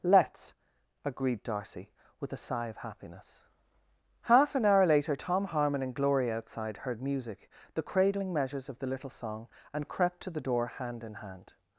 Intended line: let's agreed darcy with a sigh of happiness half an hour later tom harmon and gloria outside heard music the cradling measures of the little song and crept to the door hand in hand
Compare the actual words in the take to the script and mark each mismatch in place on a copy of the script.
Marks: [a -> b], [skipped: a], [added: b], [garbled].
let's agreed darcy with a sigh of happiness half an hour later tom harmon and gloria outside heard music the cradling measures of the little song and crept to the door hand in hand